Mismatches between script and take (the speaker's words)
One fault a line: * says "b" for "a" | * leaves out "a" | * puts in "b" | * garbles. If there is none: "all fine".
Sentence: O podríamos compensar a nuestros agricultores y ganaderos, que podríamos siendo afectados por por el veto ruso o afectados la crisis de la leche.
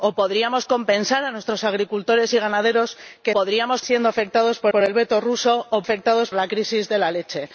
all fine